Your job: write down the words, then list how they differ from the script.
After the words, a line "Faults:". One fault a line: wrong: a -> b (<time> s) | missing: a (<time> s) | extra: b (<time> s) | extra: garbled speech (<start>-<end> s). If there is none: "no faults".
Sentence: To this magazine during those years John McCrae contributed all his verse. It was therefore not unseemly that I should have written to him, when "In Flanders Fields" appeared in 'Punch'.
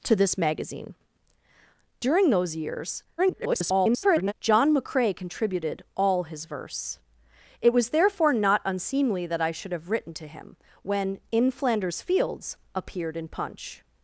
To this magazine during those years [garbled] John McCrae contributed all his verse. It was therefore not unseemly that I should have written to him, when "In Flanders Fields" appeared in 'Punch'.
Faults:
extra: garbled speech (3.2-4.3 s)